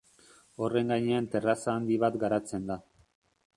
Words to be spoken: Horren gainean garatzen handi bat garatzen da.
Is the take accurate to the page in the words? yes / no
no